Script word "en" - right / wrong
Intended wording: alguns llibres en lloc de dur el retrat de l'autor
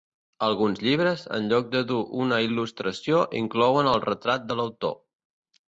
right